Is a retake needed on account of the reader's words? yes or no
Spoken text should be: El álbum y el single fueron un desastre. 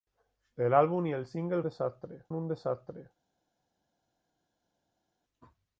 yes